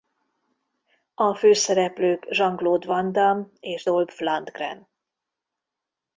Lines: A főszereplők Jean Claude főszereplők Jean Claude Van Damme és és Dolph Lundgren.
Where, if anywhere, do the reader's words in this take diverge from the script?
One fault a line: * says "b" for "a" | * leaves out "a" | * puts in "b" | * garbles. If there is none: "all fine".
* leaves out "főszereplők Jean Claude"
* leaves out "és"